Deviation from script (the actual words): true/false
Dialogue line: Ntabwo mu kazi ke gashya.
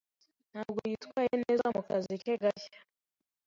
true